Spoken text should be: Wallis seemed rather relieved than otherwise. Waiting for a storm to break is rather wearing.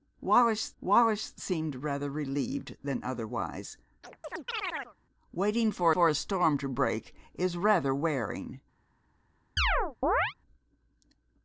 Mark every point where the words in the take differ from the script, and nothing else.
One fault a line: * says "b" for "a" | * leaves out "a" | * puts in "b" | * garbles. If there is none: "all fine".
* puts in "wallis"
* puts in "for"